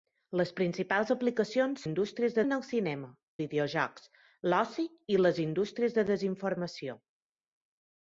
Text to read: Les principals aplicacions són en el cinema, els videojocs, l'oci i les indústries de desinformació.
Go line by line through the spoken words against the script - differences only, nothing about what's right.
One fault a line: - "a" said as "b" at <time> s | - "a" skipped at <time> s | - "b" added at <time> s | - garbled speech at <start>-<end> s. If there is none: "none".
- "són" said as "indústries" at 1.9 s
- "els" skipped at 3.1 s